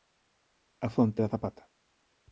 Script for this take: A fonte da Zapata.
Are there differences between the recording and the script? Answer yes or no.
no